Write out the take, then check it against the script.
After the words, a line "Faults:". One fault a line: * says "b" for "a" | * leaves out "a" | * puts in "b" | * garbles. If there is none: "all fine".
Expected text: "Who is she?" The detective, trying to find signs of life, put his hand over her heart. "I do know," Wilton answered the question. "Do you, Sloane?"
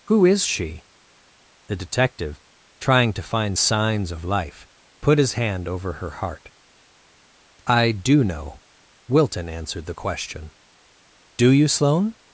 "Who is she?" The detective, trying to find signs of life, put his hand over her heart. "I do know," Wilton answered the question. "Do you, Sloane?"
Faults:
all fine